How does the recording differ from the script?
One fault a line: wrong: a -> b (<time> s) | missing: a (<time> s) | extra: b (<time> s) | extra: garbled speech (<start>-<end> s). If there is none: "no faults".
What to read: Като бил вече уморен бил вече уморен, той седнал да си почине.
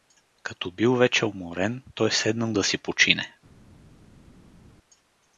missing: бил вече уморен (1.8 s)